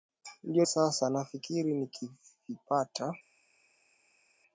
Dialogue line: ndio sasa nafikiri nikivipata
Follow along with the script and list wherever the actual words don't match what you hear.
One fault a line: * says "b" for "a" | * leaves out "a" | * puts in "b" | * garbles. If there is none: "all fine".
all fine